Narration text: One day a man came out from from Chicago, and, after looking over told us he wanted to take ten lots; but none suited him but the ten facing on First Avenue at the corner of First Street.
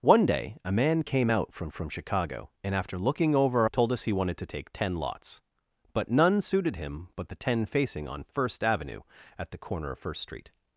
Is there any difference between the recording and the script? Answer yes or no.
no